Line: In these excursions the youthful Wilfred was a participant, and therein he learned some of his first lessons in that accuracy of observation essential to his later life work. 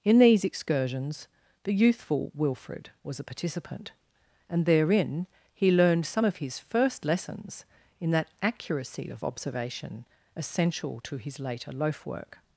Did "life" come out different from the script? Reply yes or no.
yes